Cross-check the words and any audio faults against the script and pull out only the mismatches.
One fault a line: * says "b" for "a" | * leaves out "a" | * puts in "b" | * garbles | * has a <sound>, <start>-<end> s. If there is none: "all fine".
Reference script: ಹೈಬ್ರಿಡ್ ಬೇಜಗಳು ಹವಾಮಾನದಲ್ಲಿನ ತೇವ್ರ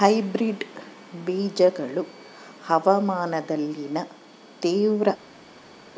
all fine